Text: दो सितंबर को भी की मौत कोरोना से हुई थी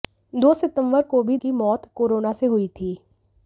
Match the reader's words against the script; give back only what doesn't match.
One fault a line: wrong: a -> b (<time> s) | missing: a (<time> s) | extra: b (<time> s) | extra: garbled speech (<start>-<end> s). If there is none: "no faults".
no faults